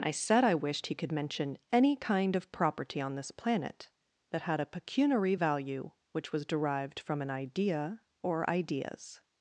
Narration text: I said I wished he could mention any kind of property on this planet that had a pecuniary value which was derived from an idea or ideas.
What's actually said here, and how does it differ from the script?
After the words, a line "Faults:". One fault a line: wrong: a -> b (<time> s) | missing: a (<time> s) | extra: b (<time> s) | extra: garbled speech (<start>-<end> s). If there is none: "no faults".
I said I wished he could mention any kind of property on this planet that had a pecuniary value which was derived from an idea or ideas.
Faults:
no faults